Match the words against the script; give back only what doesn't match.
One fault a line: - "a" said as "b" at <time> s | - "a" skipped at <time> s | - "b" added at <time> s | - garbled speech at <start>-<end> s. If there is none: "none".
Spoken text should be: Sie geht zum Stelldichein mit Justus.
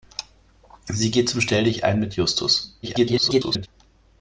- garbled speech at 2.8-3.7 s